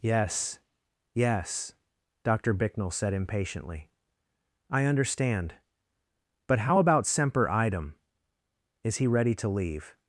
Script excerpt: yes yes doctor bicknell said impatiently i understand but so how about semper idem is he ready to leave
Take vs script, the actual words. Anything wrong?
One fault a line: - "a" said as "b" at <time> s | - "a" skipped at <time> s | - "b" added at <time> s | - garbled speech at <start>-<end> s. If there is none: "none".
- "so" skipped at 6.6 s